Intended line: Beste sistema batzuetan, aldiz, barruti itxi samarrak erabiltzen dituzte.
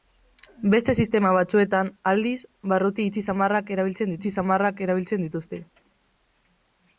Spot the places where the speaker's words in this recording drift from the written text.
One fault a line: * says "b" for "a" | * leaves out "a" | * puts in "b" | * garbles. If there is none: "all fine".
* puts in "itxi samarrak erabiltzen"